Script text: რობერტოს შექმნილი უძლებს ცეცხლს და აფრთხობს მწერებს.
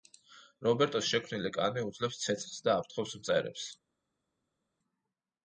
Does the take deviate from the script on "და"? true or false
false